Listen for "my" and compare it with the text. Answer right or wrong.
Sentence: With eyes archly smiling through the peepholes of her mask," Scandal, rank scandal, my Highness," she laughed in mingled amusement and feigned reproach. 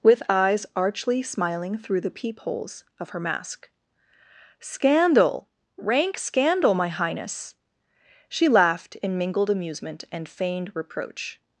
right